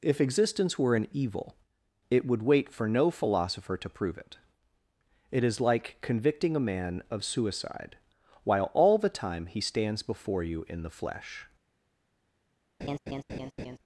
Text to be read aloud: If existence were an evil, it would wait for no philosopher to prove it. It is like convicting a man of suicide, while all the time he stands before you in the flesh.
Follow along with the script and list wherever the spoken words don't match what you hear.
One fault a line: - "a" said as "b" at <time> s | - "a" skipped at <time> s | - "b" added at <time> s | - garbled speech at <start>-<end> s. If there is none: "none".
none